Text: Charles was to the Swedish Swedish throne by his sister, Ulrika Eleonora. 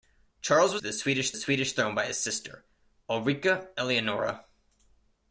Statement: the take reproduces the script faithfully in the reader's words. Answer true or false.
true